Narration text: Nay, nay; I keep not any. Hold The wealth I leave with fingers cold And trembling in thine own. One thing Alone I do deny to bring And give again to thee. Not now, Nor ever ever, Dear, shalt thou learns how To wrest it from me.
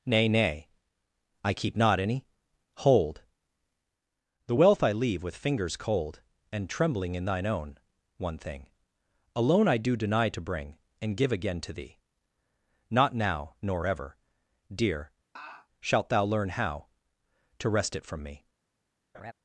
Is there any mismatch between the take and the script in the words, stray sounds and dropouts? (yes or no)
yes